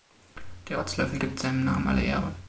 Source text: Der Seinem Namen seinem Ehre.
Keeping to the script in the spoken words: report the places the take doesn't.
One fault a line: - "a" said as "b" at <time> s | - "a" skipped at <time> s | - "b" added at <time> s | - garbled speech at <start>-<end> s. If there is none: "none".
- "Rotzlöffel gibt" added at 0.8 s
- "seinem" said as "alle" at 1.9 s